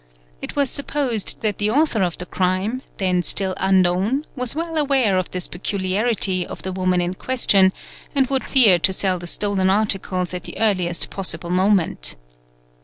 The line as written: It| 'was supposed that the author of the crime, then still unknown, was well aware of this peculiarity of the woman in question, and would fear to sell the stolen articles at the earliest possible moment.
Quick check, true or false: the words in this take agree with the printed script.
true